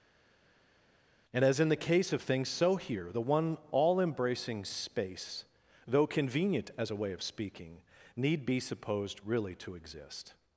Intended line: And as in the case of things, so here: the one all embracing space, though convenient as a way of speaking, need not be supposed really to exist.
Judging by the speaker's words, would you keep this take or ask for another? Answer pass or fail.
fail